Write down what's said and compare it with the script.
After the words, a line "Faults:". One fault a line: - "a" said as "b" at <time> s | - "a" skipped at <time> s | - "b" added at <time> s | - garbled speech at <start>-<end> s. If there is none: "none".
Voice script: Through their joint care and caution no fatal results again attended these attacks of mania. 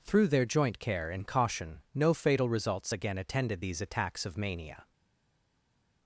Through their joint care and caution no fatal results again attended these attacks of mania.
Faults:
none